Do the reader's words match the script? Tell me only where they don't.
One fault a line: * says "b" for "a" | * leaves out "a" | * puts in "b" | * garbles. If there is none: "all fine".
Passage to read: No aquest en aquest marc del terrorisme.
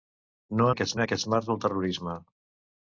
all fine